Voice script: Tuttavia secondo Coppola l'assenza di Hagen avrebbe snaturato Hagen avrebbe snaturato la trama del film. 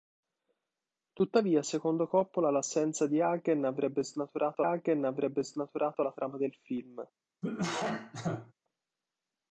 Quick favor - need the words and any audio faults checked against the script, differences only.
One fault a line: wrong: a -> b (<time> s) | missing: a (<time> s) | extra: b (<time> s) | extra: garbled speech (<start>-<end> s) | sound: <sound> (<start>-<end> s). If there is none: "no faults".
sound: cough (7.4-8.5 s)